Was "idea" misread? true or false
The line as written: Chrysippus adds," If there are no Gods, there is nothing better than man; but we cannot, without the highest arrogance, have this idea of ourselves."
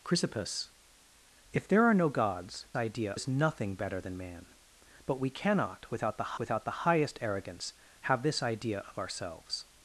false